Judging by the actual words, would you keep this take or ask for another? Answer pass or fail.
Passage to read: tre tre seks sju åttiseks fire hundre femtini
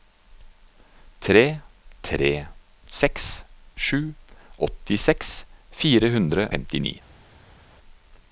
pass